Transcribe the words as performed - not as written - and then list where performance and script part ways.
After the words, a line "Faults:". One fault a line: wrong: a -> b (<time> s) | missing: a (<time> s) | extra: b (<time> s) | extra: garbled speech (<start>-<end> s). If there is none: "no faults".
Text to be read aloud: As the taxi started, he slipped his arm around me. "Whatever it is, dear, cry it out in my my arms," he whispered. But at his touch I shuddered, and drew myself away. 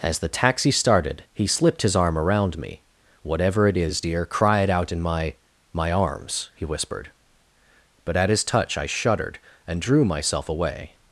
As the taxi started, he slipped his arm around me. "Whatever it is, dear, cry it out in my my arms," he whispered. But at his touch I shuddered, and drew myself away.
Faults:
no faults